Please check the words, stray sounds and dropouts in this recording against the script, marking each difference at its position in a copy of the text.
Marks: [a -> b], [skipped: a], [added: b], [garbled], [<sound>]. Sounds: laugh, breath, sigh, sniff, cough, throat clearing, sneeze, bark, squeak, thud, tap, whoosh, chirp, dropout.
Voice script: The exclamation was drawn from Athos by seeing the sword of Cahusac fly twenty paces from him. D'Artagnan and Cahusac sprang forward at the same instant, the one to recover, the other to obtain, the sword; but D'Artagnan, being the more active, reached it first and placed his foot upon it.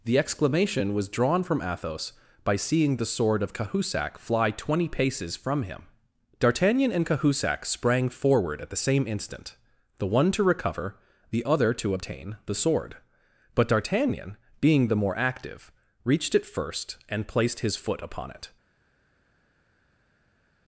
The exclamation was drawn from Athos by seeing the sword of Cahusac fly twenty paces from him. D'Artagnan and Cahusac sprang forward at the same instant, the one to recover, the other to obtain, the sword; but D'Artagnan, being the more active, reached it first and placed his foot upon it.